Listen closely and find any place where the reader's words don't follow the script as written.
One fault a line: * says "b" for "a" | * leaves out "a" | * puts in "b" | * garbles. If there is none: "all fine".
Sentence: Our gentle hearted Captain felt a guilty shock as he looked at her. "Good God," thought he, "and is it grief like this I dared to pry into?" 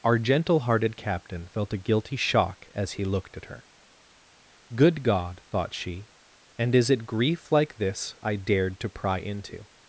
* says "she" for "he"